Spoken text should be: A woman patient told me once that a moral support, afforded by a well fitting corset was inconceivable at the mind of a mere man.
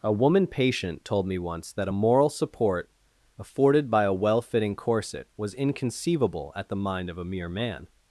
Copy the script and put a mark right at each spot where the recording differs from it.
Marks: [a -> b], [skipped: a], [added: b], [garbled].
A woman patient told me once that a moral support, afforded by a well fitting corset was inconceivable at the mind of a mere man.